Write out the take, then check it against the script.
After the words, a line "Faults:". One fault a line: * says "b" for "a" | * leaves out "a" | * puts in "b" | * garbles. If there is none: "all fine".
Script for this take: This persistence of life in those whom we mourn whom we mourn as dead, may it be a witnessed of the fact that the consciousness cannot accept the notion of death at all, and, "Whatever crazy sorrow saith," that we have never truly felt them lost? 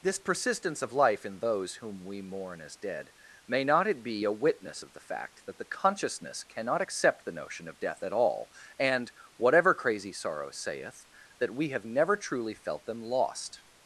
This persistence of life in those whom we mourn as dead, may not it be a witness of the fact that the consciousness cannot accept the notion of death at all, and, "Whatever crazy sorrow saith," that we have never truly felt them lost?
Faults:
* leaves out "whom we mourn"
* puts in "not"
* says "witness" for "witnessed"